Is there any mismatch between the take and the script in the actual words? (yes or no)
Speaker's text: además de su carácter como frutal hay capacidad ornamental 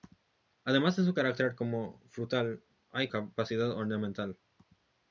no